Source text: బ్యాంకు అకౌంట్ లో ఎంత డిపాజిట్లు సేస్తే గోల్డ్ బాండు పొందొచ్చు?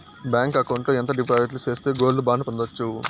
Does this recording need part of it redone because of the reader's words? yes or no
no